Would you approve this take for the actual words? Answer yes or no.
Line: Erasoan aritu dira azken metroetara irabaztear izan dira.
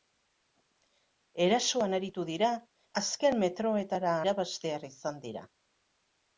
yes